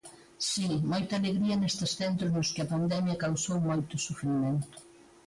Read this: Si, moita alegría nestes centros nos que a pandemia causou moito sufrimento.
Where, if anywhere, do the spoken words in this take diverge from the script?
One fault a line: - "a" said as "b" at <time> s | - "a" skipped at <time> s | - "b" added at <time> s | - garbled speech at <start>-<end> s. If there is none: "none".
none